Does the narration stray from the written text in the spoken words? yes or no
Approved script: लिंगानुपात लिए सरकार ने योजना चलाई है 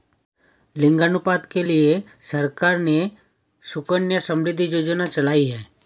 yes